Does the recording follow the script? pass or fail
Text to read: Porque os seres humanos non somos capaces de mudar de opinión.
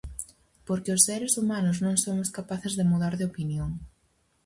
pass